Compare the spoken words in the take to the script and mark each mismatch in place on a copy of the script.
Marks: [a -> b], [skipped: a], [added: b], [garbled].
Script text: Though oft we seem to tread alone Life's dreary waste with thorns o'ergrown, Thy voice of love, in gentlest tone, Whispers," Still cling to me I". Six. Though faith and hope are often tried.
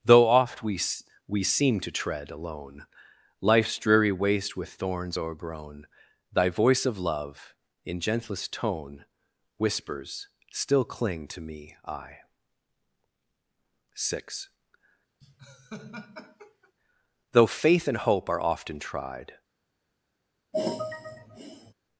Though oft we [added: we] seem to tread alone Life's dreary waste with thorns o'ergrown, Thy voice of love, in gentlest tone, Whispers," Still cling to me I". Six. Though faith and hope are often tried.